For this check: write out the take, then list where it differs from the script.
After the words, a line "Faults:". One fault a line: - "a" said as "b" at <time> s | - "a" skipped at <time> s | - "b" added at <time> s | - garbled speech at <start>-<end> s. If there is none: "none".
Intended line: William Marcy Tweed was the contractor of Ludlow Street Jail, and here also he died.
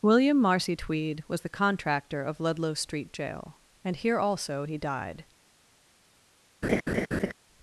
William Marcy Tweed was the contractor of Ludlow Street Jail, and here also he died.
Faults:
none